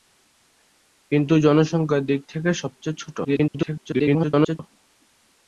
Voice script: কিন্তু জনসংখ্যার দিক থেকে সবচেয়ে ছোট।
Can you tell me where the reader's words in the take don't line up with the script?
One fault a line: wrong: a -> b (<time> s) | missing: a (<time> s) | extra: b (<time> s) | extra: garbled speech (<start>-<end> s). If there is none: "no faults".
extra: garbled speech (3.2-4.6 s)